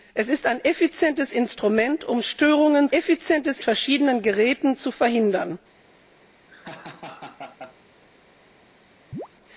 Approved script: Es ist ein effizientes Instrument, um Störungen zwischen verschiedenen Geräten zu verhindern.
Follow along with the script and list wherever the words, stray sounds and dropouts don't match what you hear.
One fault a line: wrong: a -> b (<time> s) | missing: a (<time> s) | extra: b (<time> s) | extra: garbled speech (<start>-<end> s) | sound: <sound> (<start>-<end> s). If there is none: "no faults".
wrong: zwischen -> effizientes (2.9 s)
sound: laugh (6.5-7.8 s)
sound: chirp (9.1-9.3 s)